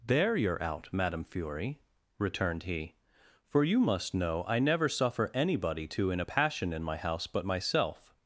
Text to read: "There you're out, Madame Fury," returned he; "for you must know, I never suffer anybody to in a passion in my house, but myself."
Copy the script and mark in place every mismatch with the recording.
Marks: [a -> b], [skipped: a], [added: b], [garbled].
"There you're out, Madame Fury," returned he; "for you must know, I never suffer anybody to in a passion in my house, but myself."